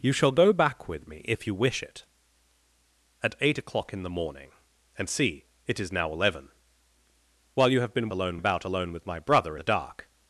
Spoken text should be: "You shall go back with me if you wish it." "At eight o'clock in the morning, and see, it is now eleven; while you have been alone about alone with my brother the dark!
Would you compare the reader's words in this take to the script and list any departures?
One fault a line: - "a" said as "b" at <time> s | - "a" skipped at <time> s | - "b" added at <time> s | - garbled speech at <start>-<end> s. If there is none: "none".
none